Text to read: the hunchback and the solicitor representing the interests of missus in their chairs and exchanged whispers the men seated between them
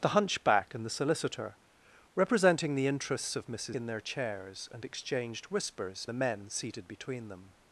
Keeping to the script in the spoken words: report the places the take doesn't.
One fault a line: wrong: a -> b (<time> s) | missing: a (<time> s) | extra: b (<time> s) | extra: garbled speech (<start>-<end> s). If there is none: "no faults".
no faults